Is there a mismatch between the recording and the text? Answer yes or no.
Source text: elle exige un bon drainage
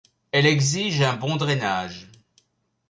no